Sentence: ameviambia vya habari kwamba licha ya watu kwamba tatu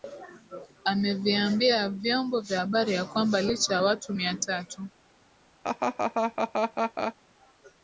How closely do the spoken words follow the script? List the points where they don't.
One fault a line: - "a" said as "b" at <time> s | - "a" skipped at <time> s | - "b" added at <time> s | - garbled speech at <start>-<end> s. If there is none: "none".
- "vyombo" added at 1.9 s
- "ya" added at 2.9 s
- "kwamba" said as "mia" at 4.1 s